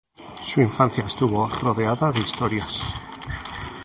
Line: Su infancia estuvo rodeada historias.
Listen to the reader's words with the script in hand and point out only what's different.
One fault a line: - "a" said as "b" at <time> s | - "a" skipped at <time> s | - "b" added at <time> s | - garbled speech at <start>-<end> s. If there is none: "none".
- "de" added at 2.1 s